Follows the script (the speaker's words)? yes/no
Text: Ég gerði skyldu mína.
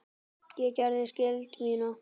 yes